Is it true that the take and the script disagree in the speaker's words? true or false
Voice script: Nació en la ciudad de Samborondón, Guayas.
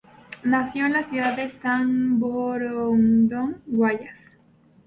false